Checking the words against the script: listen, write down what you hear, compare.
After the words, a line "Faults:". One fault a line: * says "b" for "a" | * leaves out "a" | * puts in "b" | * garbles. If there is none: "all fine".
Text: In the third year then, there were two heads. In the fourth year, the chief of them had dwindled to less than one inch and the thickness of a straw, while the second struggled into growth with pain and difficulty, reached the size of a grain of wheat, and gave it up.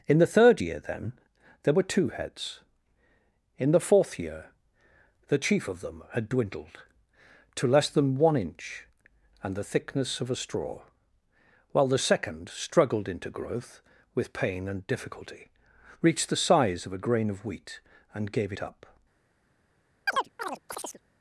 In the third year then, there were two heads. In the fourth year, the chief of them had dwindled to less than one inch and the thickness of a straw, while the second struggled into growth with pain and difficulty, reached the size of a grain of wheat, and gave it up.
Faults:
all fine